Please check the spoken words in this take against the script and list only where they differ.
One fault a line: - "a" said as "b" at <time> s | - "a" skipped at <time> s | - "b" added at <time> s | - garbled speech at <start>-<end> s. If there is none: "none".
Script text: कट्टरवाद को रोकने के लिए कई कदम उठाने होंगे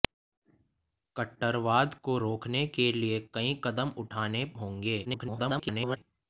- garbled speech at 5.0-6.0 s